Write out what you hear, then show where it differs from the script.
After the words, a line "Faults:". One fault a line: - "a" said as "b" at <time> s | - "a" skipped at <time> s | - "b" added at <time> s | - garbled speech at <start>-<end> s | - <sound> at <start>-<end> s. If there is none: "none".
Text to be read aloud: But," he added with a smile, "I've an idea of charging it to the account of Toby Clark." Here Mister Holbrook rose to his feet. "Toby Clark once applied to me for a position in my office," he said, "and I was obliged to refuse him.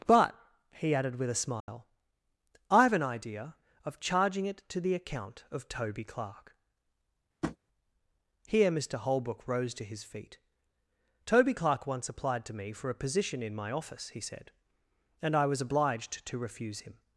But," he added with a smile, "I've an idea of charging it to the account of Toby Clark." Here Mister Holbrook rose to his feet. "Toby Clark once applied to me for a position in my office," he said, "and I was obliged to refuse him.
Faults:
- dropout at 1.6-1.7 s
- tap at 7.4-7.6 s